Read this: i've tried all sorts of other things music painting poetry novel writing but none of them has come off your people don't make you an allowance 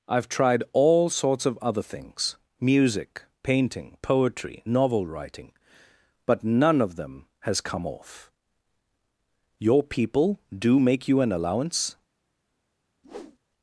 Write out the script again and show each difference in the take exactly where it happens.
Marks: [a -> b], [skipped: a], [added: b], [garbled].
i've tried all sorts of other things music painting poetry novel writing but none of them has come off your people [don't -> do] make you an allowance